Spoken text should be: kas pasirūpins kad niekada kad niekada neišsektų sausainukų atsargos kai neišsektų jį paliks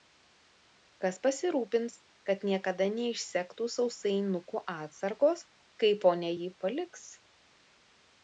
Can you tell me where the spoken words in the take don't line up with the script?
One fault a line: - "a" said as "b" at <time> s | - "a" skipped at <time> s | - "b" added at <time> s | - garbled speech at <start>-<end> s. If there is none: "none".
- "kad niekada" skipped at 2.9 s
- "neišsektų" said as "ponia" at 6.1 s